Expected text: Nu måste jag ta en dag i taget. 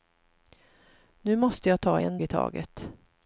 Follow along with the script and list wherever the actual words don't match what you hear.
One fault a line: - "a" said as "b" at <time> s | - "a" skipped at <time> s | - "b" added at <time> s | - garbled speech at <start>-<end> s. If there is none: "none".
- "dag" skipped at 2.2 s